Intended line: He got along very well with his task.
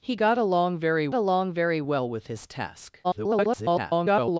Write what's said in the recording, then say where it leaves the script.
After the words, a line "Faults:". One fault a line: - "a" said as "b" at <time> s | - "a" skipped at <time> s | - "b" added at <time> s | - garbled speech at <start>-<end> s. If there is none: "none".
He got along very along very well with his task. [garbled]
Faults:
- "along very" added at 1.1 s
- garbled speech at 3.0-4.4 s